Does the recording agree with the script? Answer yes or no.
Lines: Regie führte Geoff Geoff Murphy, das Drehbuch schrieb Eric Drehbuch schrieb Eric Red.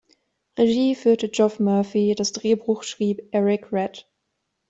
no